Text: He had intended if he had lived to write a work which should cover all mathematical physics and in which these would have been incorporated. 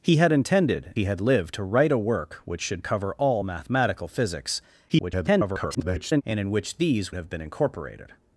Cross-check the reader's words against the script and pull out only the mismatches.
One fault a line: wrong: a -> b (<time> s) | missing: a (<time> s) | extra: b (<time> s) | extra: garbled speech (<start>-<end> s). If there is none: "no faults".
missing: if (0.9 s)
extra: garbled speech (4.9-6.2 s)
missing: would (7.1 s)